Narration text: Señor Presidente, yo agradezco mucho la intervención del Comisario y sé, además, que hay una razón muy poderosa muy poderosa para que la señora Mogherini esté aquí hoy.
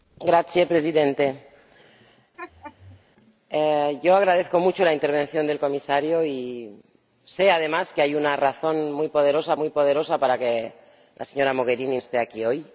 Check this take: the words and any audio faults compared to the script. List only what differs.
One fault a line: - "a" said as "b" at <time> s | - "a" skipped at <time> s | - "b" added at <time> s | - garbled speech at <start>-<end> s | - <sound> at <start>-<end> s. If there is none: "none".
- laugh at 2.4-3.0 s